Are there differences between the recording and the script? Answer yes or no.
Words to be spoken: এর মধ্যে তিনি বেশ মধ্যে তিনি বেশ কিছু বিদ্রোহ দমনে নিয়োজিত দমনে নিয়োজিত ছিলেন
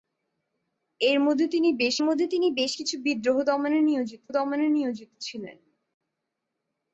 no